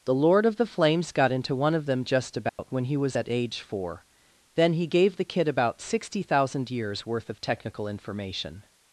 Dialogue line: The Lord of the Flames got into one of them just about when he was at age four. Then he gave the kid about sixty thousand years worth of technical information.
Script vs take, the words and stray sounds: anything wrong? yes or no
yes